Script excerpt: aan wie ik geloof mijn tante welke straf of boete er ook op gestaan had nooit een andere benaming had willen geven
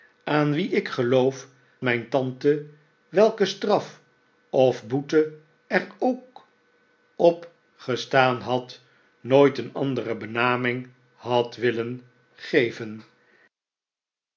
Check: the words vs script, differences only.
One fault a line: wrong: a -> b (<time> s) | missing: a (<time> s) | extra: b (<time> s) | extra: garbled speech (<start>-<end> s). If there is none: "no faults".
no faults